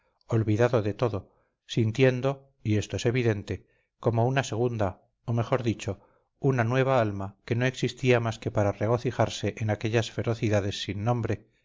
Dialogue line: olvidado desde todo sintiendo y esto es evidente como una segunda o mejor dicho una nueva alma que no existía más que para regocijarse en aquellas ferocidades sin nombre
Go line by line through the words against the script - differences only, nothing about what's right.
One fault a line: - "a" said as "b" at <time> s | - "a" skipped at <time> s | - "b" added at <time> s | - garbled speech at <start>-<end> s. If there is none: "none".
- "desde" said as "de" at 0.8 s